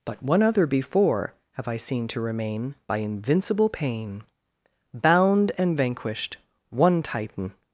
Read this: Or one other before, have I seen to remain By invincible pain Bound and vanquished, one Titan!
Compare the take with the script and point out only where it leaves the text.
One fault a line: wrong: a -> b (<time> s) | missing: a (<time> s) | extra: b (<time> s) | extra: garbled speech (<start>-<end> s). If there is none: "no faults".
wrong: Or -> But (0.1 s)